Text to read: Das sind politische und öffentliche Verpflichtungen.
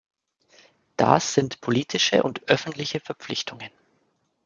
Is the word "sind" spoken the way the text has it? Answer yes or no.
yes